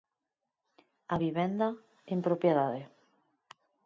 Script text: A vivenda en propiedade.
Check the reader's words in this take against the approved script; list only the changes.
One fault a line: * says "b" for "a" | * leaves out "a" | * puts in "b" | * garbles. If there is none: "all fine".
all fine